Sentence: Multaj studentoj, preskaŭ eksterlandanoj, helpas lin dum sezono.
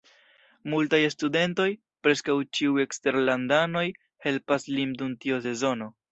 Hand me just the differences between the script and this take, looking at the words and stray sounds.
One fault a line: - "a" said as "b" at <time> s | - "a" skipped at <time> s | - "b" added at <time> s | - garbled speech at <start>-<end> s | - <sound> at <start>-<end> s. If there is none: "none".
- "ĉiuj" added at 2.6 s
- "tiu" added at 5.3 s